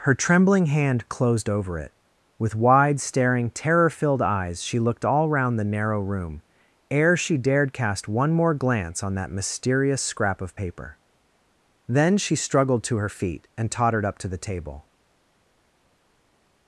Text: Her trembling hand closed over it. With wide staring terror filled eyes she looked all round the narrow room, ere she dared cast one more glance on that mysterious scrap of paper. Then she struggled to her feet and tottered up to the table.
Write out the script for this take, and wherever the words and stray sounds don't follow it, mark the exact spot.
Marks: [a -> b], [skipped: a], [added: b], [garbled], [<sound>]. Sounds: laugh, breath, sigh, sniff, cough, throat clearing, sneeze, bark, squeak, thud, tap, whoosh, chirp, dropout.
Her trembling hand closed over it. With wide staring terror filled eyes she looked all round the narrow room, ere she dared cast one more glance on that mysterious scrap of paper. Then she struggled to her feet and tottered up to the table.